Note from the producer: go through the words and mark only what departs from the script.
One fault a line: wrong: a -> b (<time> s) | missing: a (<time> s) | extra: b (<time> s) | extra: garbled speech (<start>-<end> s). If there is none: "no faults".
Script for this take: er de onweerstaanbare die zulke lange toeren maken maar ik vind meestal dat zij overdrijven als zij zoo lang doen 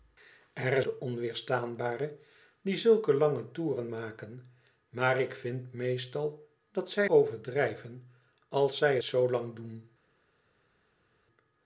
no faults